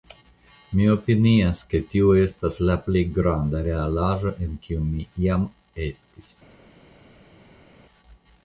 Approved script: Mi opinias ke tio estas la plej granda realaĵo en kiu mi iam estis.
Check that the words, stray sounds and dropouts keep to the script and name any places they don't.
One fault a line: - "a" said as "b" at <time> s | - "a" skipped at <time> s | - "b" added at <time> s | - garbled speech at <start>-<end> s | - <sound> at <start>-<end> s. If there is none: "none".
none